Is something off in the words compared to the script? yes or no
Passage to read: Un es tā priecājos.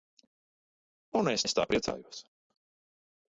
yes